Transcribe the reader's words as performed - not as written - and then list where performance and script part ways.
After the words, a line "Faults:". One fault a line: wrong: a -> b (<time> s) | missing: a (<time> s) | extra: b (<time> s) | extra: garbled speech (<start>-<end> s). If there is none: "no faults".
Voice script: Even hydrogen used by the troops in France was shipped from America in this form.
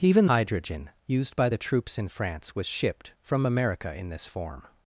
Even hydrogen used by the troops in France was shipped from America in this form.
Faults:
no faults